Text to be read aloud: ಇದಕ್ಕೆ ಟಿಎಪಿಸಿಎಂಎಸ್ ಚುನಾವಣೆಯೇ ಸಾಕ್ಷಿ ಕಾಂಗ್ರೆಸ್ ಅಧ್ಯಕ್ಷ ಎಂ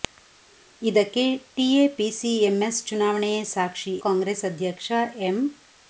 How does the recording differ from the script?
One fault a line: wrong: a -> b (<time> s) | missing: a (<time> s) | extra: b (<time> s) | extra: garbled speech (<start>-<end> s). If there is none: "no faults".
no faults